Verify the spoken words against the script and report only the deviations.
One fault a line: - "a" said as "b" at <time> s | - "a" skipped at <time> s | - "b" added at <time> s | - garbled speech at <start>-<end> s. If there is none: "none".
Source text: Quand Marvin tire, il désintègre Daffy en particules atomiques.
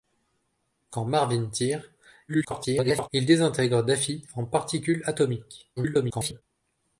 - garbled speech at 2.3-3.1 s
- garbled speech at 5.8-6.4 s